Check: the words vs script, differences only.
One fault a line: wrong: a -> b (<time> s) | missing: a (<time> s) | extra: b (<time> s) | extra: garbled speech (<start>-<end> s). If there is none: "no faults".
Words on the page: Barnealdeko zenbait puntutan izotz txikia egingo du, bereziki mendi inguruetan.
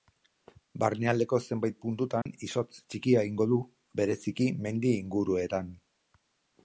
no faults